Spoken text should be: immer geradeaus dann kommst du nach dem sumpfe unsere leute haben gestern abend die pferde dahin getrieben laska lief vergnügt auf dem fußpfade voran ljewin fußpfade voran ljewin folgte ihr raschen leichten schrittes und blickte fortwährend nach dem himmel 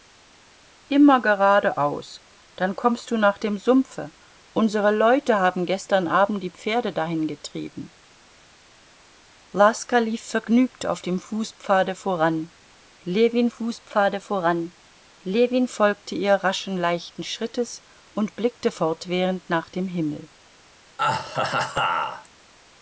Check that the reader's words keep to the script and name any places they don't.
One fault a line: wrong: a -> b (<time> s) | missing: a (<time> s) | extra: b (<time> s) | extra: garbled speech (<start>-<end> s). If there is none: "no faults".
no faults